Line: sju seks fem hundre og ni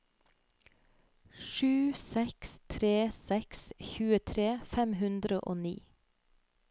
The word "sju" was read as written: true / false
true